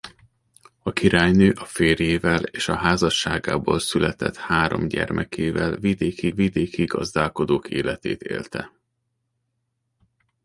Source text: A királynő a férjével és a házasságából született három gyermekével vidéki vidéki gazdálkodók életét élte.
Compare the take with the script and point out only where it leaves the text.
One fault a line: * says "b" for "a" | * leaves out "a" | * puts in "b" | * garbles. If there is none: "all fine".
all fine